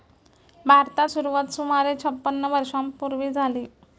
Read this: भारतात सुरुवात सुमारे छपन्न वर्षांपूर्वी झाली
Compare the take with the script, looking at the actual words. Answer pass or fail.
pass